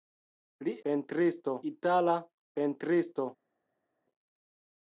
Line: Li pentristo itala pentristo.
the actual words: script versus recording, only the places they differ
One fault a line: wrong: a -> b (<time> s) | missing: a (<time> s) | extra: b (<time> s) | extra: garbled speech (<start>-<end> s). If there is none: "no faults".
no faults